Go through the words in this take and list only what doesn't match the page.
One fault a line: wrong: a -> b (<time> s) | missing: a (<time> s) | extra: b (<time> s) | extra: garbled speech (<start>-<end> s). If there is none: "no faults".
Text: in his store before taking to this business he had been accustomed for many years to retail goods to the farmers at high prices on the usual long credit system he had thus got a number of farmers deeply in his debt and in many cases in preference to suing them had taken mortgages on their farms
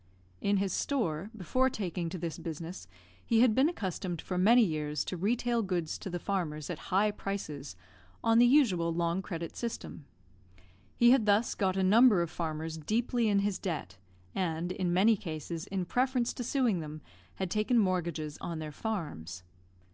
no faults